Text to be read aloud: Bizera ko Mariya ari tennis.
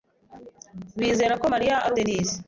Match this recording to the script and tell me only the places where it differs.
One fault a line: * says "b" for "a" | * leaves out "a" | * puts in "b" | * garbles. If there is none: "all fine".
all fine